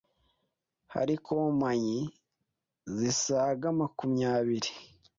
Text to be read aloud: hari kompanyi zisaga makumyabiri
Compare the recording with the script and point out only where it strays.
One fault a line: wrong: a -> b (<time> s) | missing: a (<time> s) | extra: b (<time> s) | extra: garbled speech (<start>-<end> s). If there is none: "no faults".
no faults